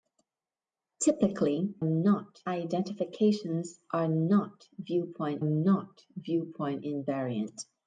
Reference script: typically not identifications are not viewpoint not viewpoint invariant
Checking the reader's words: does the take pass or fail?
pass